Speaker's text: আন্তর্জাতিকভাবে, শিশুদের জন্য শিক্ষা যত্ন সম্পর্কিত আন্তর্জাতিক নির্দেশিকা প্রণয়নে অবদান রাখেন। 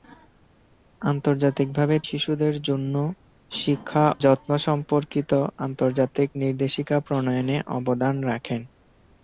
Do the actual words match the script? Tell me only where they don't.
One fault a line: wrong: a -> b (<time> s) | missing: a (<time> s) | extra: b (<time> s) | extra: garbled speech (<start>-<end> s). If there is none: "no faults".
no faults